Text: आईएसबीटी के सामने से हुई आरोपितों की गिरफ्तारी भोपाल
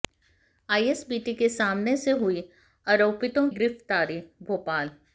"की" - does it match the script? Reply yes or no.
no